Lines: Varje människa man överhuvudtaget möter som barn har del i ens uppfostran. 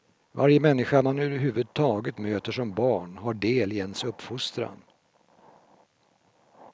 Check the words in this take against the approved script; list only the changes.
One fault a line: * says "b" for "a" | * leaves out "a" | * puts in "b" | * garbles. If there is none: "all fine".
all fine